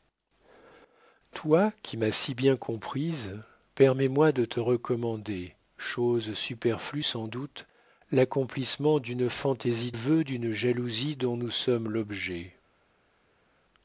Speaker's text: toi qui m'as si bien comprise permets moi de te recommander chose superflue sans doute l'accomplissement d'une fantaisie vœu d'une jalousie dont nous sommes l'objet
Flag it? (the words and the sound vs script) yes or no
no